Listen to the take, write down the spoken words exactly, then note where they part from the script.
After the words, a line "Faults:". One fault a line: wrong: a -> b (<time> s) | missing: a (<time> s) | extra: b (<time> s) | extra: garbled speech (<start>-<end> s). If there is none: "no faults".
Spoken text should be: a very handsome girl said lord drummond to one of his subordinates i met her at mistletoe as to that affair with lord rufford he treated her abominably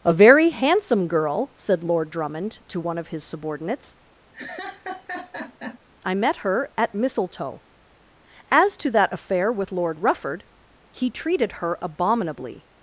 a very handsome girl said lord drummond to one of his subordinates i met her at mistletoe as to that affair with lord rufford he treated her abominably
Faults:
no faults